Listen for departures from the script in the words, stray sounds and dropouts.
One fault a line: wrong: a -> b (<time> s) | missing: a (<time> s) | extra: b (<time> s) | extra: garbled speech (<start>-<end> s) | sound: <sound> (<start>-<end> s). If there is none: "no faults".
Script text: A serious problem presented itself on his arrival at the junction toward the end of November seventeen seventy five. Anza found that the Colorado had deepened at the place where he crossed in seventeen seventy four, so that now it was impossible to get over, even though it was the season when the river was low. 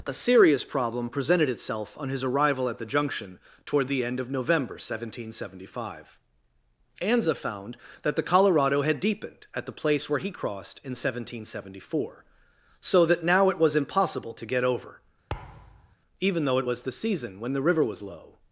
sound: thud (15.3-16.0 s)